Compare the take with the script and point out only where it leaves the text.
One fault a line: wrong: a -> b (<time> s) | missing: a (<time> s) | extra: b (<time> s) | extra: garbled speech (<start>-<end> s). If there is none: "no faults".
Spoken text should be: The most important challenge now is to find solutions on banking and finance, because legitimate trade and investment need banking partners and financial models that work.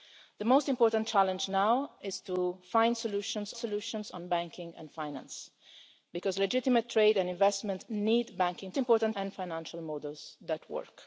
extra: solutions (3.6 s)
wrong: partners -> important (8.8 s)